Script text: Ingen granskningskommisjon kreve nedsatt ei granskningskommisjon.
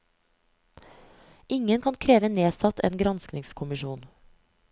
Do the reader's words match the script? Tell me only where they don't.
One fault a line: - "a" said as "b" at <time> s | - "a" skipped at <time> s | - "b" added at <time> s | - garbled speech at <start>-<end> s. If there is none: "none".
- "granskningskommisjon" said as "kan" at 1.8 s
- "ei" said as "en" at 2.8 s